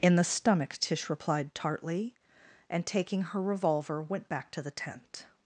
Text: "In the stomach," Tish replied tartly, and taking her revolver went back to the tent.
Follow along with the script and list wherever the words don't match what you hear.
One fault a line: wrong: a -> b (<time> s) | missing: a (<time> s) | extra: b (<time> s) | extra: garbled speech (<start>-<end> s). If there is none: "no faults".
no faults